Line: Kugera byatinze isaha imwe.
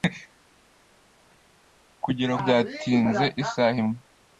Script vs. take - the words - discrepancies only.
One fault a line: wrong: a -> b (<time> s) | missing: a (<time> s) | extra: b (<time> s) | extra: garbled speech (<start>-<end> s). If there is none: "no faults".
no faults